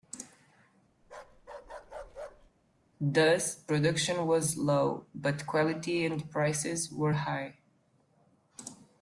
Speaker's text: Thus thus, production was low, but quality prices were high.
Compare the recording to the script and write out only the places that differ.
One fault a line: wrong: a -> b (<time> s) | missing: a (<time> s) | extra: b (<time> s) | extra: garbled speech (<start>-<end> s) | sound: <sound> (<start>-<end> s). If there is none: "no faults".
sound: bark (1.0-2.5 s)
missing: thus (3.5 s)
extra: and (6.1 s)